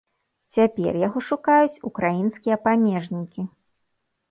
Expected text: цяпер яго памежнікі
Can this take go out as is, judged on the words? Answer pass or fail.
fail